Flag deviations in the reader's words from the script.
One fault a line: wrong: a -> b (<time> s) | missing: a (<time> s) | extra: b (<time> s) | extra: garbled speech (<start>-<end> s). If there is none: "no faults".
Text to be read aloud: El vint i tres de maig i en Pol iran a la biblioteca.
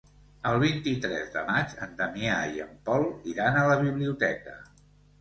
extra: en Damià (1.9 s)